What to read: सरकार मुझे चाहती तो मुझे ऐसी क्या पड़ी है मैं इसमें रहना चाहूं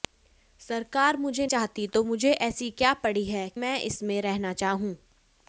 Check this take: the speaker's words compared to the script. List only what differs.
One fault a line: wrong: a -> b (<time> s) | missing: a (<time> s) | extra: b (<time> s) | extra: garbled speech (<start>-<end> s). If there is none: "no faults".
no faults